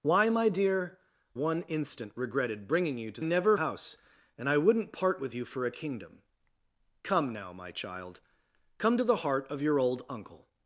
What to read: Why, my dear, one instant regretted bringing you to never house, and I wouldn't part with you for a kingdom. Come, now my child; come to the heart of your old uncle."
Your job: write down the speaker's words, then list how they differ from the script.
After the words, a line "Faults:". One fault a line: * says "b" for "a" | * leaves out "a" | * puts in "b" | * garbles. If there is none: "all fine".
Why, my dear, one instant regretted bringing you to never house, and I wouldn't part with you for a kingdom. Come, now my child; come to the heart of your old uncle."
Faults:
all fine